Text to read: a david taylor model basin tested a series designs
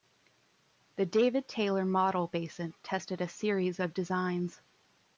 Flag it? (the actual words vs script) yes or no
yes